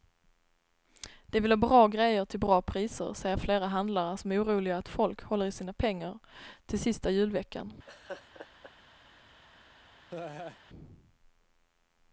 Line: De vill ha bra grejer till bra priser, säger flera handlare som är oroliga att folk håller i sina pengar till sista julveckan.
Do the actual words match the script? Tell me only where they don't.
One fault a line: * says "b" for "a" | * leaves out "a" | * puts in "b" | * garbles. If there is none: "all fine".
all fine